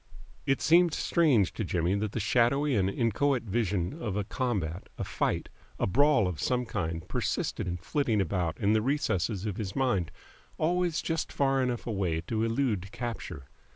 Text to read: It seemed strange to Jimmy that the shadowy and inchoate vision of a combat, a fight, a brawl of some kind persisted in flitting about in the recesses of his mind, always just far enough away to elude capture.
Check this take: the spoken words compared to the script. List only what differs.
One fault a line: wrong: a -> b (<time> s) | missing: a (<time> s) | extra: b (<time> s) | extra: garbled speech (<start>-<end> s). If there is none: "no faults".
no faults